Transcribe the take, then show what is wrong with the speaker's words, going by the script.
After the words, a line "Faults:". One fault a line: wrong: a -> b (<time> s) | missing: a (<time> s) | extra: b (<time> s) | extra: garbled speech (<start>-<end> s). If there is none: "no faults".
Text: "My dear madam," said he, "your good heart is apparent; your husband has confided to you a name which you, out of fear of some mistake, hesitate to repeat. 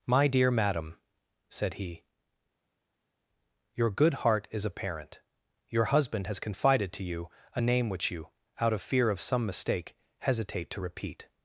"My dear madam," said he, "your good heart is apparent; your husband has confided to you a name which you, out of fear of some mistake, hesitate to repeat.
Faults:
no faults